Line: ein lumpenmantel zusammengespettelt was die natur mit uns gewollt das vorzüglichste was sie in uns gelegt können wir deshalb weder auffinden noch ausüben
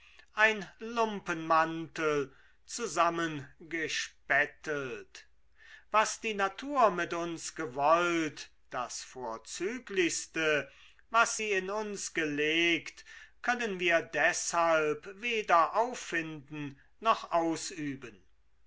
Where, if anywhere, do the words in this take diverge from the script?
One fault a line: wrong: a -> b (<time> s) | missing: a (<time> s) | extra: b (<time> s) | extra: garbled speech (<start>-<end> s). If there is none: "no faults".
no faults